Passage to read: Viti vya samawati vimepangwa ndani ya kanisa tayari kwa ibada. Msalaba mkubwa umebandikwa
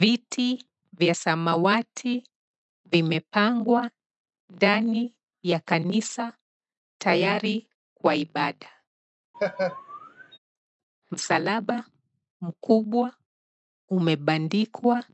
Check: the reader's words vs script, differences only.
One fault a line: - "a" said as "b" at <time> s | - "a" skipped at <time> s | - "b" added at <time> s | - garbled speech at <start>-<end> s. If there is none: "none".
none